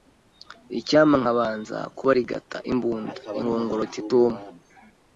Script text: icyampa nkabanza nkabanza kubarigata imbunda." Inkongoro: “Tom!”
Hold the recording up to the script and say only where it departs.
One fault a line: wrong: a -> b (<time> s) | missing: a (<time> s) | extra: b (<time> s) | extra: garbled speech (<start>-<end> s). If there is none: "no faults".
missing: nkabanza (1.8 s)
extra: iti (3.9 s)